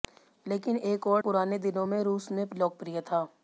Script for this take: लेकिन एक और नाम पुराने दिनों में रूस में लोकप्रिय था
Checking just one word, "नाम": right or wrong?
wrong